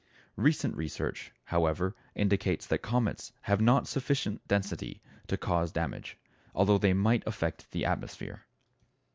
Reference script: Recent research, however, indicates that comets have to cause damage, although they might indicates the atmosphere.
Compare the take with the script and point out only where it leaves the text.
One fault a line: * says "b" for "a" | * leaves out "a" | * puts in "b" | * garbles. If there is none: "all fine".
* puts in "not sufficient density"
* says "affect" for "indicates"